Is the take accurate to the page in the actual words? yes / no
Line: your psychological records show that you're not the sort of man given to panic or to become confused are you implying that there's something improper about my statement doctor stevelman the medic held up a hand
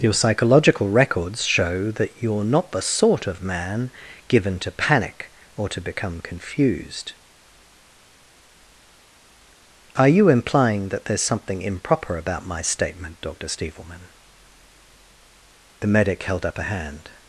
yes